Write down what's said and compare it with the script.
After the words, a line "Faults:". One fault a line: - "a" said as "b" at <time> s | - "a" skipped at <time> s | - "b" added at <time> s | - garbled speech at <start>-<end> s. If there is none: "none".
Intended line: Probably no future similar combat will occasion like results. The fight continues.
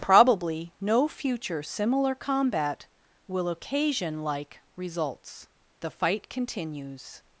Probably no future similar combat will occasion like results. The fight continues.
Faults:
none